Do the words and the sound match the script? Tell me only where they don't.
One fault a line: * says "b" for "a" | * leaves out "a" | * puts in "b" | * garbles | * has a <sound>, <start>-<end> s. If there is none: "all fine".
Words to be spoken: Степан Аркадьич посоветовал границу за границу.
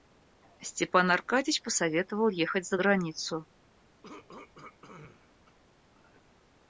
* says "ехать" for "границу"
* has a throat clearing, 4.0-5.6 s